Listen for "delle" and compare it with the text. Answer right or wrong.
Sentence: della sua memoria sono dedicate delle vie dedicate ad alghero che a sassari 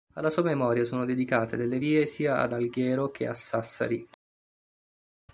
right